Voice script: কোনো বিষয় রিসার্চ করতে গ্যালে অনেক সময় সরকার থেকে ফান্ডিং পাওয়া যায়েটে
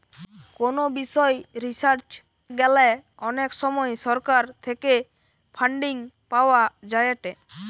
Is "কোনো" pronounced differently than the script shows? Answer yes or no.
no